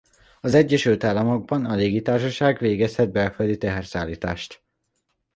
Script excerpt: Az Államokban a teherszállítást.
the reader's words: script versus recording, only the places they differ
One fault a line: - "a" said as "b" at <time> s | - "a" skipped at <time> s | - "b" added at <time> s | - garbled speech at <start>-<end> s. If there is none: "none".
- "Egyesült" added at 0.5 s
- "légitársaság végezhet belföldi" added at 1.7 s